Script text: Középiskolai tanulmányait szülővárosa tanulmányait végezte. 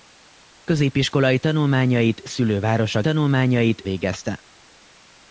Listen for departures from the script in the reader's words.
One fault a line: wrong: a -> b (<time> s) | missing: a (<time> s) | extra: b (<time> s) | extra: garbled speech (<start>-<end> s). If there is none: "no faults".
no faults